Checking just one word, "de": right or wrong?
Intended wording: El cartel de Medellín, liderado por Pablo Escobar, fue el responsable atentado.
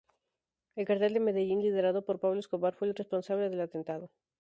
right